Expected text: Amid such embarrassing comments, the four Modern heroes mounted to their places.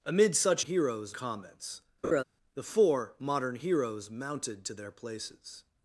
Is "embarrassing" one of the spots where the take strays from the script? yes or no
yes